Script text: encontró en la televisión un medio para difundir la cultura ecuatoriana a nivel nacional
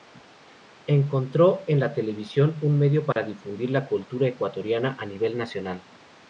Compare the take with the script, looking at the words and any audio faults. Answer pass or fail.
fail